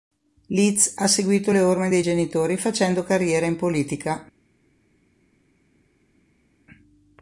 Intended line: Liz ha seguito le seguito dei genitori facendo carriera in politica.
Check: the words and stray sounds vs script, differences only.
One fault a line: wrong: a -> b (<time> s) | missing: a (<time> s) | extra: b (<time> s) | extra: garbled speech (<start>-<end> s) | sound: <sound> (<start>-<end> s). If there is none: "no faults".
wrong: seguito -> orme (1.6 s)